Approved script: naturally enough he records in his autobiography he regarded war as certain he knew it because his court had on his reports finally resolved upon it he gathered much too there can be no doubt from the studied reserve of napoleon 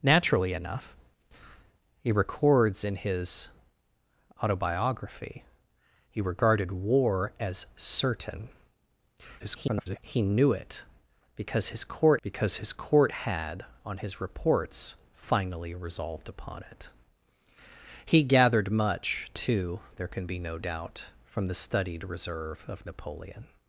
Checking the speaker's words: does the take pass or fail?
fail